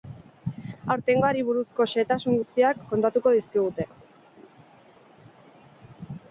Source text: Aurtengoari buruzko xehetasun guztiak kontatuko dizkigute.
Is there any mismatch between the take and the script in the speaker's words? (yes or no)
no